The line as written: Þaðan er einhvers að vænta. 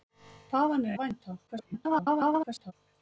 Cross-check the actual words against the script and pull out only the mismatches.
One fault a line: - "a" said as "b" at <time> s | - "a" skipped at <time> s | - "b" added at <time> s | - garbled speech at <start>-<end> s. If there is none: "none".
- "einhvers" skipped at 0.9 s
- garbled speech at 1.5-2.7 s